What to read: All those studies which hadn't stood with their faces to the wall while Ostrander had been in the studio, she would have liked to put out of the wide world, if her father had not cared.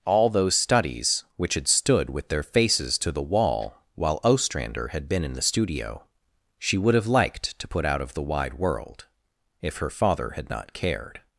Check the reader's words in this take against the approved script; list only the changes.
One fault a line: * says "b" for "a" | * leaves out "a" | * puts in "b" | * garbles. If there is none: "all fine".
* says "had" for "hadn't"